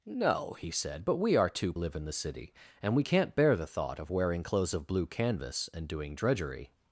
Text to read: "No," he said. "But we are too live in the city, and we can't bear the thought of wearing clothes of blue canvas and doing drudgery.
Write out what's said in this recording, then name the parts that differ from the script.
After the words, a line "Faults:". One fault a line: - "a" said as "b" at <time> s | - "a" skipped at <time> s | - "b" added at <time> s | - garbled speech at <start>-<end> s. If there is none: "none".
"No," he said. "But we are too live in the city, and we can't bear the thought of wearing clothes of blue canvas and doing drudgery.
Faults:
none